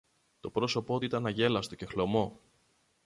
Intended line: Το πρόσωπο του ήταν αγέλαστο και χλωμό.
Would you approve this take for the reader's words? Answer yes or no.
yes